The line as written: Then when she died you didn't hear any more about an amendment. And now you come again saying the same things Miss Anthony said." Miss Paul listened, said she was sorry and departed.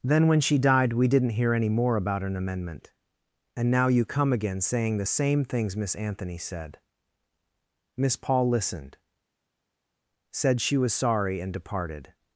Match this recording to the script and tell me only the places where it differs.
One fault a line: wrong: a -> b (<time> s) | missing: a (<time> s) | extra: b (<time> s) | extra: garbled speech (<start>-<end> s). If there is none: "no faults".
wrong: you -> we (0.9 s)